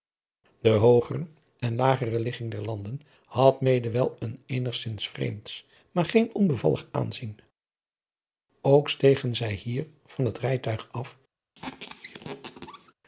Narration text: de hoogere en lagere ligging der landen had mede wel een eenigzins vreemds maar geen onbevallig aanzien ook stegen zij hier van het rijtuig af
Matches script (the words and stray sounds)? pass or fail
fail